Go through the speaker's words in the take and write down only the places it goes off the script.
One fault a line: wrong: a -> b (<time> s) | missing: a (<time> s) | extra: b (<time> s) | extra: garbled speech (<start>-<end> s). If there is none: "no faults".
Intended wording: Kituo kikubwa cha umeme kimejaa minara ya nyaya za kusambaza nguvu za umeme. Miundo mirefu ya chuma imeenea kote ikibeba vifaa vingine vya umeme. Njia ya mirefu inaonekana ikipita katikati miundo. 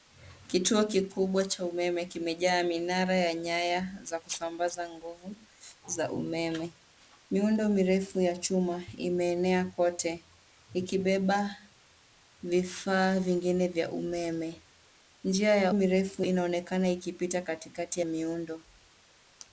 no faults